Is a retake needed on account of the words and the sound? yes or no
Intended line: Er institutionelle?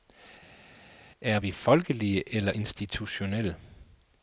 yes